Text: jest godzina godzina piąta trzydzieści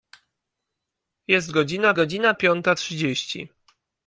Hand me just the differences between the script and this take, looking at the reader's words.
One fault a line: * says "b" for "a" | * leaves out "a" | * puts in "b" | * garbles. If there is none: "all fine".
all fine